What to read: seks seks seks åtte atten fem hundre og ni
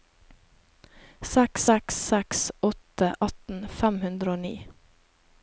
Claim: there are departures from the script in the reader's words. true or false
false